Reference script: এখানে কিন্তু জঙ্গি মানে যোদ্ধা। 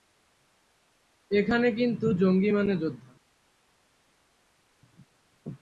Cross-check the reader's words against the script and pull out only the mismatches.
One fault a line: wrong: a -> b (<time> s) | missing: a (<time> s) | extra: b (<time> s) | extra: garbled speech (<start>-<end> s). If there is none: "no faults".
no faults